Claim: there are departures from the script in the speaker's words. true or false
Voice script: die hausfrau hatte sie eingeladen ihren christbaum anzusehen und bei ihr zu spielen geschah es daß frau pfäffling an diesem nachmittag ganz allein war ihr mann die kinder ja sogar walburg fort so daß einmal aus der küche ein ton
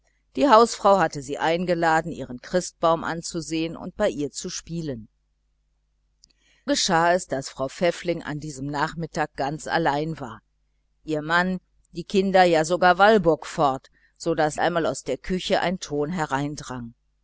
false